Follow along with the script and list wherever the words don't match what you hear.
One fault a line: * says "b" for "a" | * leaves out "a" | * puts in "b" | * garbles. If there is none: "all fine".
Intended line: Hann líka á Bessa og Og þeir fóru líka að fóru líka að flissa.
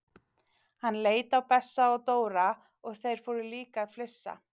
* says "leit" for "líka"
* puts in "Dóra"
* leaves out "fóru líka að"